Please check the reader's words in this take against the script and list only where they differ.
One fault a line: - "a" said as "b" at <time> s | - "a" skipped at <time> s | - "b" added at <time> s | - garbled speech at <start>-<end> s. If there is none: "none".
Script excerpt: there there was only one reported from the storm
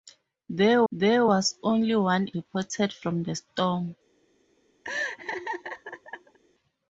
none